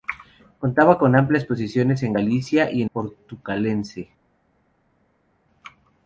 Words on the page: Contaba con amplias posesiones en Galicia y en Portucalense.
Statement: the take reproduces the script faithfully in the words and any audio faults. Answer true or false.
true